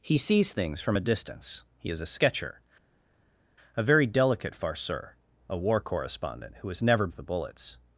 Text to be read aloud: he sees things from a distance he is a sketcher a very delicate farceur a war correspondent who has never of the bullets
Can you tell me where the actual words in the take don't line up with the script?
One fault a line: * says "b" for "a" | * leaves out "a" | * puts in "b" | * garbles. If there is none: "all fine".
all fine